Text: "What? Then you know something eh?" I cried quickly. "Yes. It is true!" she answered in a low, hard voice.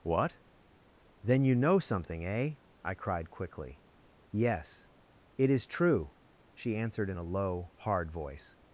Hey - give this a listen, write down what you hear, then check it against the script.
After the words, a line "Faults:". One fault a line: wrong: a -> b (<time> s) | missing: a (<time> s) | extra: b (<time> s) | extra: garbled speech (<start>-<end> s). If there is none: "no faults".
"What? Then you know something eh?" I cried quickly. "Yes. It is true!" she answered in a low, hard voice.
Faults:
no faults